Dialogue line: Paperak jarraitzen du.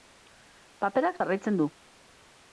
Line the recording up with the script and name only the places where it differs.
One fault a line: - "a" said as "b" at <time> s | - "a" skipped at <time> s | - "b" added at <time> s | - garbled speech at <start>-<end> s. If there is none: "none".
none